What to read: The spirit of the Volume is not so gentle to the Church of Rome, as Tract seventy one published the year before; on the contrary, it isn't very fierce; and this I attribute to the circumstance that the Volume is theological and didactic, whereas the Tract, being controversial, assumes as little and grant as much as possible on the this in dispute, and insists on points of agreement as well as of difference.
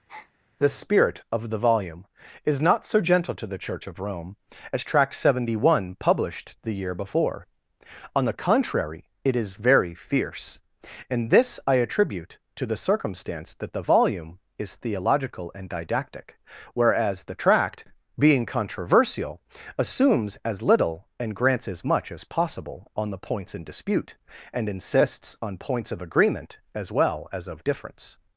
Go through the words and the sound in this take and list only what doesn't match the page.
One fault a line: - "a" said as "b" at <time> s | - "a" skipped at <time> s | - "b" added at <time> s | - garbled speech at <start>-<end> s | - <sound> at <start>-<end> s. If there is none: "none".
- breath at 0.1-0.3 s
- "isn't" said as "is" at 9.4 s
- "grant" said as "grants" at 21.4 s
- "this" said as "points" at 23.2 s